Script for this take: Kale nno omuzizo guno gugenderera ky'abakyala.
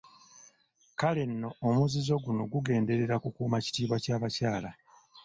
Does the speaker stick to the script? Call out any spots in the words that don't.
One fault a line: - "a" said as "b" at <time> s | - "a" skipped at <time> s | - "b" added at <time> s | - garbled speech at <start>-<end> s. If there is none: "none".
- "kukuuma kitiibwa" added at 3.2 s